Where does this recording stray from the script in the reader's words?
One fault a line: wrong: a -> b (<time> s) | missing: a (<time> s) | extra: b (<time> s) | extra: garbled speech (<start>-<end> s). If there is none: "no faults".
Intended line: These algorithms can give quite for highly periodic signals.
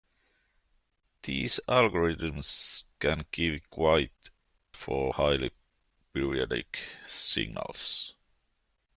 no faults